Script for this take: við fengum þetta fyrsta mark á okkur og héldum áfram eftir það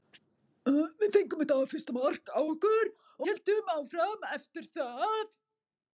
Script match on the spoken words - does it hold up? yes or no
no